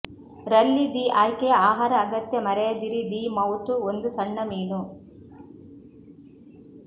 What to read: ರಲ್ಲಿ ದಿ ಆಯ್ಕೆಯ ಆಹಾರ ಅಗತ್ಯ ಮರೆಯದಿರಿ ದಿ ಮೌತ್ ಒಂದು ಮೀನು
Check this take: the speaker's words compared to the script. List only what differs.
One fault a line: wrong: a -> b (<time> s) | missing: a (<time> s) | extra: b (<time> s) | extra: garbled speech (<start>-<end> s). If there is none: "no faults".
extra: ಸಣ್ಣ (4.1 s)